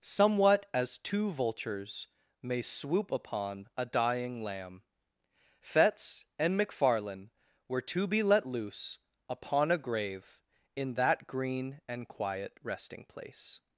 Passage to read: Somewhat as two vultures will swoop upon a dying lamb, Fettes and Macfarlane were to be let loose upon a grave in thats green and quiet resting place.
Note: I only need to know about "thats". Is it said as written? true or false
false